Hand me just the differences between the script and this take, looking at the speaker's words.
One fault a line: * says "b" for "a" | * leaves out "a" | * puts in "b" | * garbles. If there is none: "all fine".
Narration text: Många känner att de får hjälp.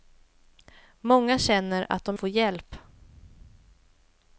all fine